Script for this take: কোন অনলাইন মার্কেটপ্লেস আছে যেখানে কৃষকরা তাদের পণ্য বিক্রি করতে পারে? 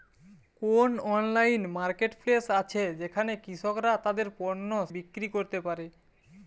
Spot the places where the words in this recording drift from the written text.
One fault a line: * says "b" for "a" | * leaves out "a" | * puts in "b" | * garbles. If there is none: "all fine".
all fine